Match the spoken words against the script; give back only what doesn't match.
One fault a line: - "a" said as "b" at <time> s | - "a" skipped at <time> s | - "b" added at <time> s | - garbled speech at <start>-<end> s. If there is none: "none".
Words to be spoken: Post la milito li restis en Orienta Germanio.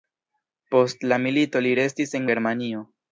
- "Orienta" skipped at 2.3 s